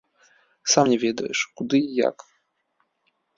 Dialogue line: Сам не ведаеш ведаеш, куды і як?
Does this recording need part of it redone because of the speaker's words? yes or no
yes